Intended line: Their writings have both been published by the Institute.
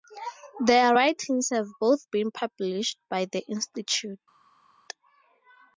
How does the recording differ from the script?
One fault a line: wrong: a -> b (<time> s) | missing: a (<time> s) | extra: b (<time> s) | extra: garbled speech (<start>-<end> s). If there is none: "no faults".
no faults